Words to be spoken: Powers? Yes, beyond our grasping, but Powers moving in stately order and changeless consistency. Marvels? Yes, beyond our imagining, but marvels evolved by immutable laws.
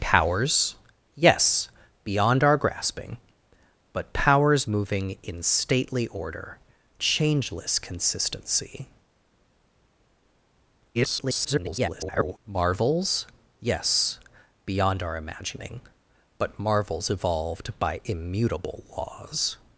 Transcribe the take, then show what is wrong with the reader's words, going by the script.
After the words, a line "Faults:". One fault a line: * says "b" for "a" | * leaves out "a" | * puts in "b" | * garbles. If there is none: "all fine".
Powers? Yes, beyond our grasping, but Powers moving in stately order changeless consistency. [garbled] Marvels? Yes, beyond our imagining, but marvels evolved by immutable laws.
Faults:
* leaves out "and"
* garbles